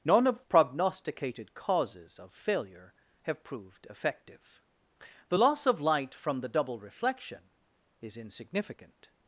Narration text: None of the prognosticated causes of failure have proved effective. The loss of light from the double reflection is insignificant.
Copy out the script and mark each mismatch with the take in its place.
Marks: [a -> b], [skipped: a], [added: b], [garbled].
None of [skipped: the] prognosticated causes of failure have proved effective. The loss of light from the double reflection is insignificant.